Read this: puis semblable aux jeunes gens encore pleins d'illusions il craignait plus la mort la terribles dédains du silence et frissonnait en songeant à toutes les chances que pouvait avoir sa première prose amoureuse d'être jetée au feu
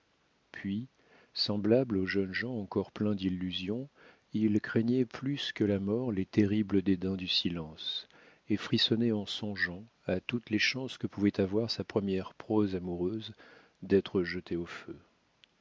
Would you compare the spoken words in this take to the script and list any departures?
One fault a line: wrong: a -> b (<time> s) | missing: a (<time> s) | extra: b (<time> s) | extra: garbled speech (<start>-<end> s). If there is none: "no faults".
extra: que (5.5 s)
wrong: la -> les (6.1 s)